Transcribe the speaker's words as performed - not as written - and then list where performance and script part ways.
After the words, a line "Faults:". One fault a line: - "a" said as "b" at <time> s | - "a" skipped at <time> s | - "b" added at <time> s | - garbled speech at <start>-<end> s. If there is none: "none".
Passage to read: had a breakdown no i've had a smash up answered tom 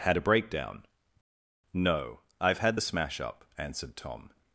had a breakdown no i've had the smash up answered tom
Faults:
- "a" said as "the" at 2.7 s